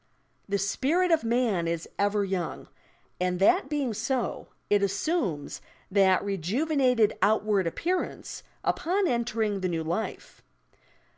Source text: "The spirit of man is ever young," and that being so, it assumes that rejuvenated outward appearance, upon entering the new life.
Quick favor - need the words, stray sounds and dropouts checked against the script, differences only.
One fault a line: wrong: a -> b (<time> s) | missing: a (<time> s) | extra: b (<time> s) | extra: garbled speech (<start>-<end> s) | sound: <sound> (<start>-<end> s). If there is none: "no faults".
no faults